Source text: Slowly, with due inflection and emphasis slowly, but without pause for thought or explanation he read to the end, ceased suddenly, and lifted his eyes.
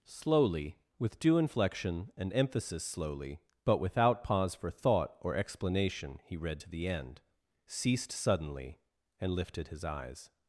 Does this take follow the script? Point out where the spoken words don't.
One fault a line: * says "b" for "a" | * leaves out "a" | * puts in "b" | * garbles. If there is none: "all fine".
all fine